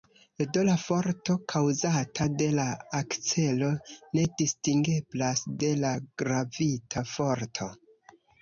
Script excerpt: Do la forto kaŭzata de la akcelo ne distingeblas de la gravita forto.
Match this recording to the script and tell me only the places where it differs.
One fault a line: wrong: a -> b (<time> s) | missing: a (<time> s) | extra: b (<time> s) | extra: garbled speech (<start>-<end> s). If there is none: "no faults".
no faults